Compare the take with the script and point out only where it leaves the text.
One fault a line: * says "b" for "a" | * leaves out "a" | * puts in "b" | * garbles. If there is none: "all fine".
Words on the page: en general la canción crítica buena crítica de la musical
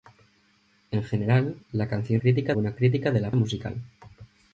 all fine